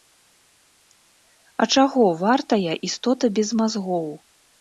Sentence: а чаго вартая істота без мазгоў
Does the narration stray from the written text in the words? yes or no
no